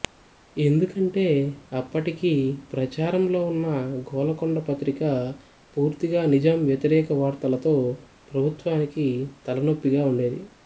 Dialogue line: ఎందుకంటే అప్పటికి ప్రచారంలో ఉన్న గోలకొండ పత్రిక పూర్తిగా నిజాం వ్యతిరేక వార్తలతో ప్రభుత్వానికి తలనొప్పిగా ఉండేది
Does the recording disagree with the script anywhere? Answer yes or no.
no